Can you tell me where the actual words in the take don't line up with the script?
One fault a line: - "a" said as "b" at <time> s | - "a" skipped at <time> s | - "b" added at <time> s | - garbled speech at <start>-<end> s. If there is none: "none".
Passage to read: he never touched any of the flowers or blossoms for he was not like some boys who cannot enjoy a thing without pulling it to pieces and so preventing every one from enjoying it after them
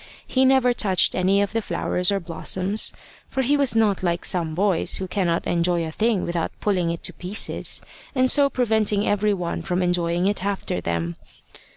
none